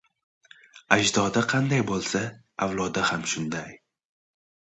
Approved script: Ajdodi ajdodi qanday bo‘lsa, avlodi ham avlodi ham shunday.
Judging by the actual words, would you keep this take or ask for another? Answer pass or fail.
fail